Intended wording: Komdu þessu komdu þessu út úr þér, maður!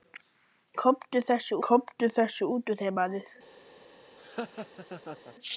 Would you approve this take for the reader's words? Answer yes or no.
yes